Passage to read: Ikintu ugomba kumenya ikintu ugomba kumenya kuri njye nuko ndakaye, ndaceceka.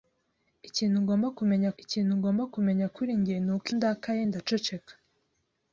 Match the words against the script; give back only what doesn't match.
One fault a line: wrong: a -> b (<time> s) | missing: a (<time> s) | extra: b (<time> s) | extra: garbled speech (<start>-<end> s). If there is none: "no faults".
no faults